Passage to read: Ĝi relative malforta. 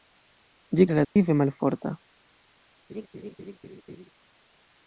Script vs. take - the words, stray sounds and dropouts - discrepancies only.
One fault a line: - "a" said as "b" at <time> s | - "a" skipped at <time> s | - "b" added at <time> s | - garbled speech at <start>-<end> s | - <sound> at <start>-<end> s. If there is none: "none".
- dropout at 1.0-1.2 s
- laugh at 2.9-4.1 s